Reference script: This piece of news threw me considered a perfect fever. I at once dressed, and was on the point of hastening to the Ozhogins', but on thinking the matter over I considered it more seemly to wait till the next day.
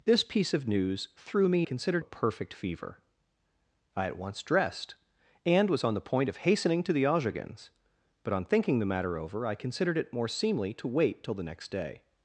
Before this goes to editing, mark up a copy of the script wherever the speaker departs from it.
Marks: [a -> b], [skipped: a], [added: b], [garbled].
This piece of news threw me considered a perfect fever. I at once dressed, and was on the point of hastening to the Ozhogins', but on thinking the matter over I considered it more seemly to wait till the next day.